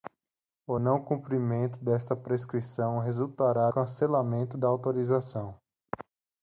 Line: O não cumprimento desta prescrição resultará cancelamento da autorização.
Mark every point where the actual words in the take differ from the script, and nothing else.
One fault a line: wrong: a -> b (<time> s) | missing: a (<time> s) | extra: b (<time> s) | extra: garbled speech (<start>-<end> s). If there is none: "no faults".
no faults